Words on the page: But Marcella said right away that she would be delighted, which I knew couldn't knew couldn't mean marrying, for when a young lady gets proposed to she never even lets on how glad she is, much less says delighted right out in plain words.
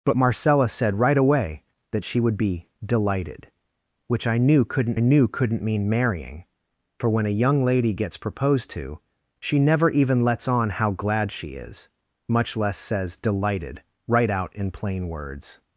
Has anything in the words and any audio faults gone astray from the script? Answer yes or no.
no